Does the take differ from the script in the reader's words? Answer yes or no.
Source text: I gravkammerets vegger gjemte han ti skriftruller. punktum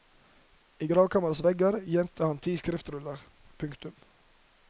no